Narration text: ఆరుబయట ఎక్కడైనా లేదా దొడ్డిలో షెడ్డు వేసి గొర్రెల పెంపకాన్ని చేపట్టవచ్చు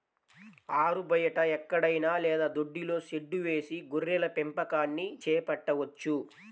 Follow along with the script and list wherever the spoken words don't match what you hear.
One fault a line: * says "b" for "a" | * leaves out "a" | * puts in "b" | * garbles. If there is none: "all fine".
all fine